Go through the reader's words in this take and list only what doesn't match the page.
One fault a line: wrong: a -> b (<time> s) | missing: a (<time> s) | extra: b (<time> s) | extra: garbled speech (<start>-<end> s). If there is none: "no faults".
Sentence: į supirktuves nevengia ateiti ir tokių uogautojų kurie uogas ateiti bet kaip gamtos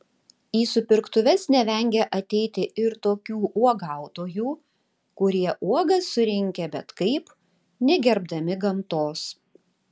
wrong: ateiti -> surinkę (6.2 s)
extra: negerbdami (7.9 s)